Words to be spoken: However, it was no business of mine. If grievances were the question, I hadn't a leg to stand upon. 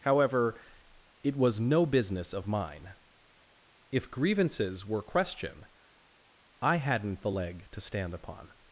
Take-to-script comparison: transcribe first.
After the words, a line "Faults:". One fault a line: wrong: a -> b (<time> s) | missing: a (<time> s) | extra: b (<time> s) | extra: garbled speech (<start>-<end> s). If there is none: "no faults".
However, it was no business of mine. If grievances were question, I hadn't the leg to stand upon.
Faults:
missing: the (5.0 s)
wrong: a -> the (7.2 s)